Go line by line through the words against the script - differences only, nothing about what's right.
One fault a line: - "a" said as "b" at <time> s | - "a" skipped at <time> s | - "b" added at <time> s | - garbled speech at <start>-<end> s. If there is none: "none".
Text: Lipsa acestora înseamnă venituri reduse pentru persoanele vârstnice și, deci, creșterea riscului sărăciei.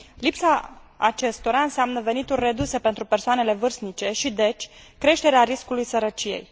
none